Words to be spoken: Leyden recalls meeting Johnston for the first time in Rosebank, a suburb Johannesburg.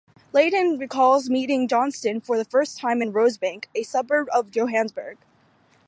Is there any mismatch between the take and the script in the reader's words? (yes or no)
yes